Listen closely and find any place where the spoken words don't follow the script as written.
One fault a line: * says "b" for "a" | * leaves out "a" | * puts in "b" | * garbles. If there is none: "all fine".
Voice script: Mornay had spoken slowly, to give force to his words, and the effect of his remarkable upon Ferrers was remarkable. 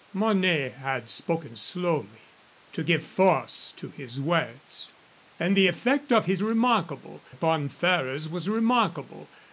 all fine